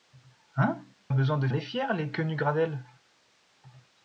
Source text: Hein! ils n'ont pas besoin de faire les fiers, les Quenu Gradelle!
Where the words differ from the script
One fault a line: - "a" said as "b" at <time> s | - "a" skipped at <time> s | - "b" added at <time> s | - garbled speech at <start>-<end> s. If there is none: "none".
- "ils n'ont pas" skipped at 0.8 s
- "faire" skipped at 1.5 s